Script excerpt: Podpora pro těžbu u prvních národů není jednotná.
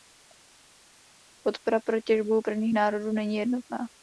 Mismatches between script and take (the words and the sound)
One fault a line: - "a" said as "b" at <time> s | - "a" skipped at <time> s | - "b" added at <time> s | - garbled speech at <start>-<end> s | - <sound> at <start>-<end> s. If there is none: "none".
none